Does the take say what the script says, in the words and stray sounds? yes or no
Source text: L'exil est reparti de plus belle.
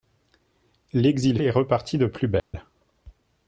no